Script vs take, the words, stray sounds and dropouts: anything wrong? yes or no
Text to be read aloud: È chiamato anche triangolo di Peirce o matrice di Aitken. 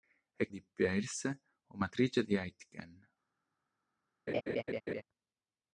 yes